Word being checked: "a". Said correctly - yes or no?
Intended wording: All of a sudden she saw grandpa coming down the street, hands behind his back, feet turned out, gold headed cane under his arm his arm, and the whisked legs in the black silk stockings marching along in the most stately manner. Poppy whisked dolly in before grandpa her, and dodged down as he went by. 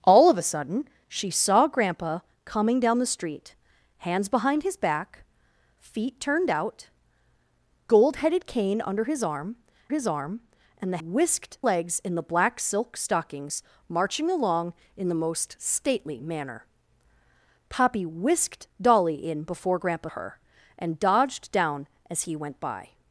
yes